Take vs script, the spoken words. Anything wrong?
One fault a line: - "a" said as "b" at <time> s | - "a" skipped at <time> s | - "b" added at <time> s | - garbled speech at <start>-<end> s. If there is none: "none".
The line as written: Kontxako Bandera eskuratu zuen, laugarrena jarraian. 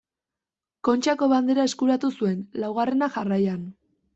none